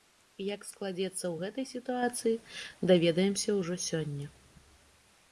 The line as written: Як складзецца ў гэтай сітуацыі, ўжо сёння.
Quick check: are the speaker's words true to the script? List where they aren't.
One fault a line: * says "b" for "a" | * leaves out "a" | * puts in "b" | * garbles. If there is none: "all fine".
* puts in "даведаемся"